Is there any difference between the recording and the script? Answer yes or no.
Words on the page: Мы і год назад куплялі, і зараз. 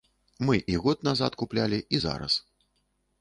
no